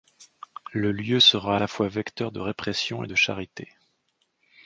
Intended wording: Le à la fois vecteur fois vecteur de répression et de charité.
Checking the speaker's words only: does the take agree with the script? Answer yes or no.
no